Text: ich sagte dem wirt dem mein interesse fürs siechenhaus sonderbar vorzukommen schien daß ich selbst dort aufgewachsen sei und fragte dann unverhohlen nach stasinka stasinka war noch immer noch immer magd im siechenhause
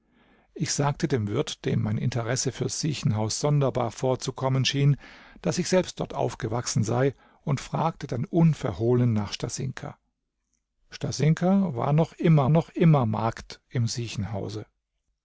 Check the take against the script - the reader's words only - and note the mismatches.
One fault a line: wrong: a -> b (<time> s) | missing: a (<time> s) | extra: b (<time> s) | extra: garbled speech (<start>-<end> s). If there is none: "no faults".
no faults